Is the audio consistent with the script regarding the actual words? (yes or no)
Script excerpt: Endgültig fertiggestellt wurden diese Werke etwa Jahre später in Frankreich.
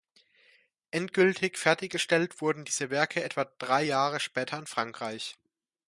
no